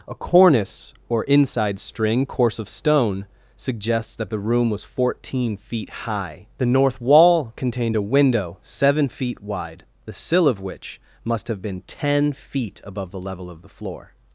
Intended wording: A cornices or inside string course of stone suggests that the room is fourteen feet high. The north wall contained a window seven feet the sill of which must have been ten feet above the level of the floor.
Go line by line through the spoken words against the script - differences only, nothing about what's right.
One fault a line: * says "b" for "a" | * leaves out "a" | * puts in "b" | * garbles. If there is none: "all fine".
* says "cornice" for "cornices"
* says "was" for "is"
* puts in "wide"